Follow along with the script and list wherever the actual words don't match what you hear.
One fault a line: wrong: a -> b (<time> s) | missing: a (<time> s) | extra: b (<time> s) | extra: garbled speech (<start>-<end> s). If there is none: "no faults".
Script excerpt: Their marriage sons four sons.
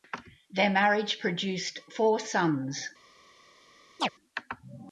wrong: sons -> produced (1.2 s)